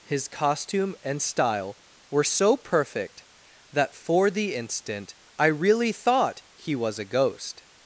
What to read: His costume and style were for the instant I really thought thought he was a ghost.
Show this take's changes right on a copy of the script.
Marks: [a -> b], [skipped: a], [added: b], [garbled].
His costume and style were [added: so perfect that] for the instant I really thought [skipped: thought] he was a ghost.